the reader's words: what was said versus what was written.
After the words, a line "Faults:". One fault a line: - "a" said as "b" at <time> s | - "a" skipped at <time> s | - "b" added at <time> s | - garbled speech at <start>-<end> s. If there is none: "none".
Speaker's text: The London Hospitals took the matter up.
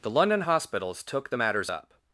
The London Hospitals took the matters up.
Faults:
- "matter" said as "matters" at 1.3 s